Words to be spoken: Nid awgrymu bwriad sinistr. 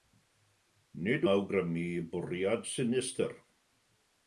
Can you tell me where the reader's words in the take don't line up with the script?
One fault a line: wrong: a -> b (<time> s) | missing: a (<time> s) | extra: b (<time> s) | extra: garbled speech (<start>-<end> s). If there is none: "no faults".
no faults